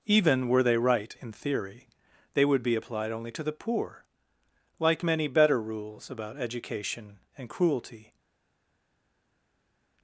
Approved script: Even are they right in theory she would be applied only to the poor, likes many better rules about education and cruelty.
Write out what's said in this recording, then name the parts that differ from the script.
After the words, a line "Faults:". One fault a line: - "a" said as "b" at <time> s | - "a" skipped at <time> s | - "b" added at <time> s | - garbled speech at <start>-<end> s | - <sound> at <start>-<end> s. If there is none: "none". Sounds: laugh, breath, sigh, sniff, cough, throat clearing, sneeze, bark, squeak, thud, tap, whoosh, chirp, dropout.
Even were they right in theory they would be applied only to the poor, like many better rules about education and cruelty.
Faults:
- "are" said as "were" at 0.5 s
- "she" said as "they" at 2.3 s
- "likes" said as "like" at 4.8 s